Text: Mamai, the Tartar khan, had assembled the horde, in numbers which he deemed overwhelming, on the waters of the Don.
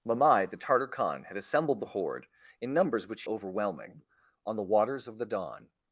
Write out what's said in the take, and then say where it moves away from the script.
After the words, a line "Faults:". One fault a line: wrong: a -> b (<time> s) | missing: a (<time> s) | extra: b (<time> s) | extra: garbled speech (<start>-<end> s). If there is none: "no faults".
Mamai, the Tartar khan, had assembled the horde, in numbers which overwhelming, on the waters of the Don.
Faults:
missing: he deemed (3.2 s)